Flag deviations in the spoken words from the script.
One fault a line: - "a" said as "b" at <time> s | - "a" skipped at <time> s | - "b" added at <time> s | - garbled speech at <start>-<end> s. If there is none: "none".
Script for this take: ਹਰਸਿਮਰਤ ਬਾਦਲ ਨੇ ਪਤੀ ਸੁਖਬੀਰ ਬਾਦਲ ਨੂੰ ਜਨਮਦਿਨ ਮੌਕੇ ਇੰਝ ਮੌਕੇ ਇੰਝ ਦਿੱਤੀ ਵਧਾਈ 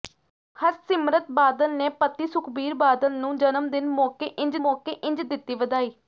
none